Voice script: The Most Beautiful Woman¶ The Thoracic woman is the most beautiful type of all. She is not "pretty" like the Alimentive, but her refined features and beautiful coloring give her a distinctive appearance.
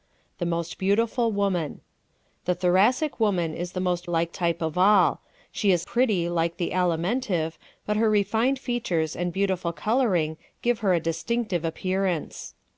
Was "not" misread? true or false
true